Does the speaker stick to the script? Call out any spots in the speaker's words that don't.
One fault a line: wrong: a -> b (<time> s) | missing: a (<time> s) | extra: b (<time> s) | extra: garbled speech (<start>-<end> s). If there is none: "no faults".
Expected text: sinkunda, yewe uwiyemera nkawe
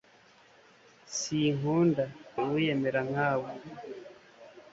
missing: yewe (2.0 s)